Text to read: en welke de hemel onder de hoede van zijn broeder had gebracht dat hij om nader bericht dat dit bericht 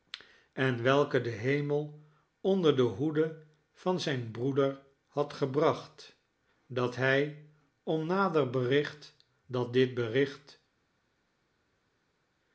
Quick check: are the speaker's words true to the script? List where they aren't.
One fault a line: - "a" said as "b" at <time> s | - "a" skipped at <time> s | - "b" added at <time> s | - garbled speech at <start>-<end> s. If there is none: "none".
none